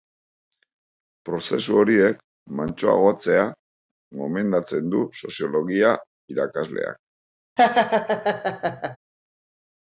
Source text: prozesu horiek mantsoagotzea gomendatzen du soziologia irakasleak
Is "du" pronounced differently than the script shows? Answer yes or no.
no